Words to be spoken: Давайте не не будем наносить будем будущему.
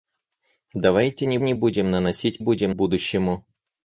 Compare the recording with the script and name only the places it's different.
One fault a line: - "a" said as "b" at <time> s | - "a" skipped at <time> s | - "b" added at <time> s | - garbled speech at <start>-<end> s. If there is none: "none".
none